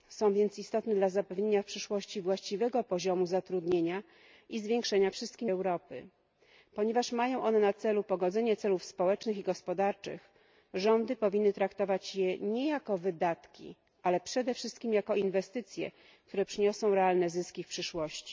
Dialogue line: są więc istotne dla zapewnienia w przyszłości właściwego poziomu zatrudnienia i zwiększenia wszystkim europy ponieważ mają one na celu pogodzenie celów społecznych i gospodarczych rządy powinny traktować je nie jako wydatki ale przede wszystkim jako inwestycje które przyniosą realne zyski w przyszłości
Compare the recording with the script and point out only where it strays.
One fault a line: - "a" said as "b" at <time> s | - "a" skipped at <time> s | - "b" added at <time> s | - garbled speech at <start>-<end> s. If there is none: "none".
none